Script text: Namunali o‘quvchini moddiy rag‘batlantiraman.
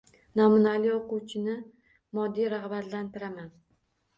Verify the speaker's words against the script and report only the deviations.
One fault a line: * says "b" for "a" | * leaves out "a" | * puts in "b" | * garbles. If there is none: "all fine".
all fine